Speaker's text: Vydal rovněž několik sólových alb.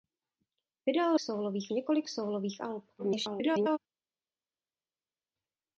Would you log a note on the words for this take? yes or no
yes